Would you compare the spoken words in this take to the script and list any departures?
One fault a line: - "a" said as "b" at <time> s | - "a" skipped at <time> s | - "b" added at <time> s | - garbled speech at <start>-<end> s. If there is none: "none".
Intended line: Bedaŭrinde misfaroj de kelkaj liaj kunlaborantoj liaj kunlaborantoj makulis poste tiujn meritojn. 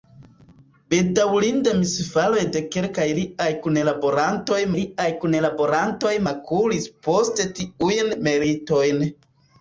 none